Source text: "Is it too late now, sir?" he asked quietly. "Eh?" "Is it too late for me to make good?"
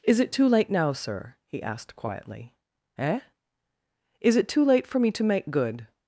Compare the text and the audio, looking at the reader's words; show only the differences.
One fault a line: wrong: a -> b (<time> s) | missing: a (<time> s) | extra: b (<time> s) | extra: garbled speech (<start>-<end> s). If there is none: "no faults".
no faults